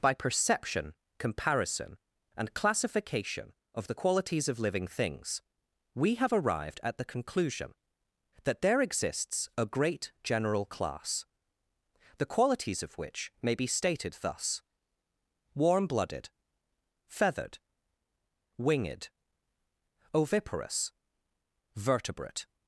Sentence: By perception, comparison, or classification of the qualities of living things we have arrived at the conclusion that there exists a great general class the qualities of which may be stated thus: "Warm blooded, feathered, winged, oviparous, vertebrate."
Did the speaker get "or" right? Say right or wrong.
wrong